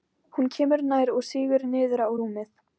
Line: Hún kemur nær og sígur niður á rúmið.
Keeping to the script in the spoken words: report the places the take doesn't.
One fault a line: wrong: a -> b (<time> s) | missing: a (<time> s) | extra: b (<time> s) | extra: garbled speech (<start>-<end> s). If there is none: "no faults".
no faults